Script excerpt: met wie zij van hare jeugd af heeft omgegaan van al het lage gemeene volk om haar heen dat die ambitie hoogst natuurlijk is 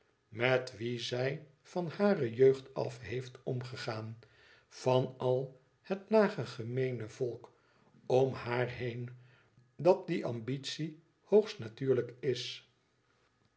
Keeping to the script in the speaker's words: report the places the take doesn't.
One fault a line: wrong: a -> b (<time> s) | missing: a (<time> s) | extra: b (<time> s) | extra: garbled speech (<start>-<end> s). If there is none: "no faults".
no faults